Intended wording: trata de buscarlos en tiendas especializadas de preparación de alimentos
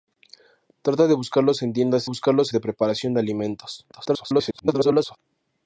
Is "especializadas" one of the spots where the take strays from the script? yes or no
yes